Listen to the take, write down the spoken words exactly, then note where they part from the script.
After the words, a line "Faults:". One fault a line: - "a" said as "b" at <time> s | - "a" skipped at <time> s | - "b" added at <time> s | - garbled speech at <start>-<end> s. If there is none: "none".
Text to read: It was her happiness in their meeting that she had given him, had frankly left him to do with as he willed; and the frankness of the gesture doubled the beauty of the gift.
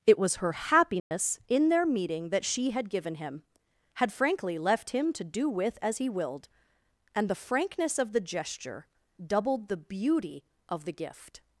It was her happiness in their meeting that she had given him, had frankly left him to do with as he willed; and the frankness of the gesture doubled the beauty of the gift.
Faults:
none